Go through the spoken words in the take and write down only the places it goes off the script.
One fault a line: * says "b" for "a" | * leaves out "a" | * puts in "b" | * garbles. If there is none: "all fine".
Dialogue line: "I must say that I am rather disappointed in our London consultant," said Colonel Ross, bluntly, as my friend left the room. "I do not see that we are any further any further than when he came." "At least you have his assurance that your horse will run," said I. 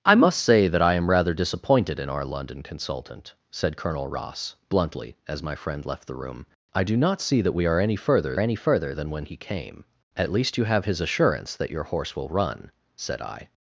all fine